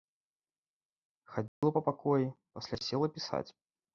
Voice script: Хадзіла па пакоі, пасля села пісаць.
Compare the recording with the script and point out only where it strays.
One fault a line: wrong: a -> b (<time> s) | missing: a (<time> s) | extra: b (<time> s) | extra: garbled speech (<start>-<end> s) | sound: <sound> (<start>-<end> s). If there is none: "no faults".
sound: dropout (1.5-1.6 s)